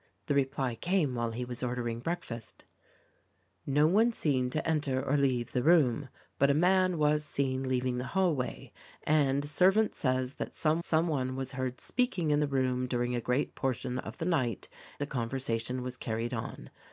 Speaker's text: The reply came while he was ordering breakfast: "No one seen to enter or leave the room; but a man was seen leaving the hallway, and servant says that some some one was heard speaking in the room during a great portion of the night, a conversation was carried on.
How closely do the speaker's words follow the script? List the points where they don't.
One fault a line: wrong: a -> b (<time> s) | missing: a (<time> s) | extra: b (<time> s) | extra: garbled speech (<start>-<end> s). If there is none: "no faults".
no faults